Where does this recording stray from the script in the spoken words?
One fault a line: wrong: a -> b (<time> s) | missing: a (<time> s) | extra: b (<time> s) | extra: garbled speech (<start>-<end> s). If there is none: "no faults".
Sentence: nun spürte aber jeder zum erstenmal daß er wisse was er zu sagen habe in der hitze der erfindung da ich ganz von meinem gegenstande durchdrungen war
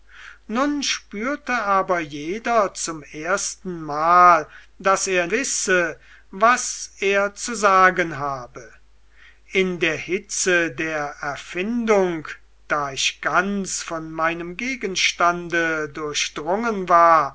no faults